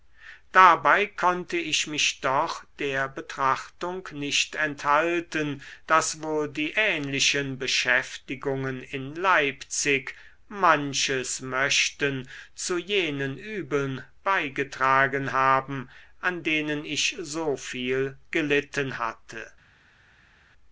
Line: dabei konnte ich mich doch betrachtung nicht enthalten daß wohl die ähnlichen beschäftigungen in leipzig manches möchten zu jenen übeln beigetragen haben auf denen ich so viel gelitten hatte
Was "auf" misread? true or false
true